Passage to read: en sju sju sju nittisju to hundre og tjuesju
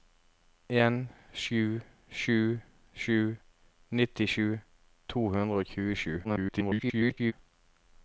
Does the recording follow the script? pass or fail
fail